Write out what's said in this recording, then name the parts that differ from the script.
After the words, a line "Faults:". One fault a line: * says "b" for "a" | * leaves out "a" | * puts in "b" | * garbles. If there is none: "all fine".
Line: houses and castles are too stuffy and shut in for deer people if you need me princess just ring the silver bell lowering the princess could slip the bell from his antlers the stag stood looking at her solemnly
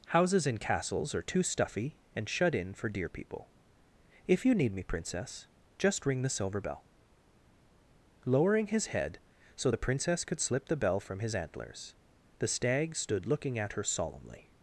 houses and castles are too stuffy and shut in for deer people if you need me princess just ring the silver bell lowering his head so the princess could slip the bell from his antlers the stag stood looking at her solemnly
Faults:
* puts in "his head so"